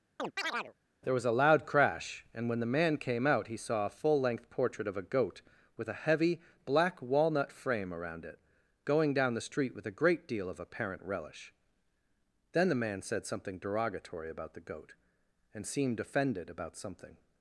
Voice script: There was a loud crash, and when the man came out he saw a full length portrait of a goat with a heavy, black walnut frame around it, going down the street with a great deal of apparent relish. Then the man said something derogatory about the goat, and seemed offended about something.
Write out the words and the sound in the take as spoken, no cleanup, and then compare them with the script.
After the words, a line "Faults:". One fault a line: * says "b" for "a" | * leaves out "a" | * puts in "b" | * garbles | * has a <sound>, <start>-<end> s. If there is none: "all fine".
There was a loud crash, and when the man came out he saw a full length portrait of a goat with a heavy, black walnut frame around it, going down the street with a great deal of apparent relish. Then the man said something derogatory about the goat, and seemed offended about something.
Faults:
* has a chirp, 0.2-0.7 s